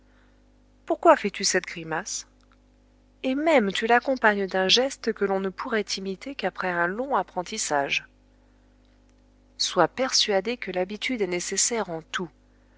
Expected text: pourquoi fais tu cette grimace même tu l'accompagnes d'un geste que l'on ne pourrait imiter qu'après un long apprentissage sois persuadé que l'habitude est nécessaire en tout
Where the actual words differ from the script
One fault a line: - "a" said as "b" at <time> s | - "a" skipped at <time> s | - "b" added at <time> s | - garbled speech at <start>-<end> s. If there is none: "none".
- "et" added at 3.2 s